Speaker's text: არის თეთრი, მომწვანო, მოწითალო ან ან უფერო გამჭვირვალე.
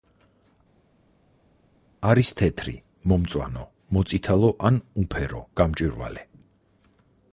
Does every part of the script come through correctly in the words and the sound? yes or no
no